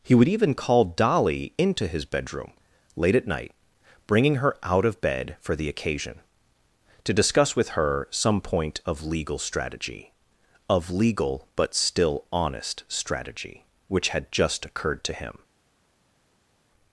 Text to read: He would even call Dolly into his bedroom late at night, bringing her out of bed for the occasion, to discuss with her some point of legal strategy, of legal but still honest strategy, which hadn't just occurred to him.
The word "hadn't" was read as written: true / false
false